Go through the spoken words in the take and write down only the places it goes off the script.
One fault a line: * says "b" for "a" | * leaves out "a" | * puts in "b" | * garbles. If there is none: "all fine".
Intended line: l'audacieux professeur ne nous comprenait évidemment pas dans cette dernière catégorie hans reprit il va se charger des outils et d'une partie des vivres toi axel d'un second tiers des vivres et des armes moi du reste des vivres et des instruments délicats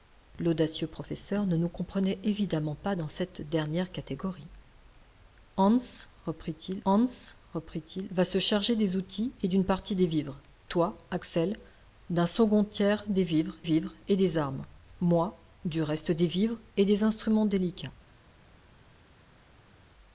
* puts in "hans reprit il"
* puts in "vivres"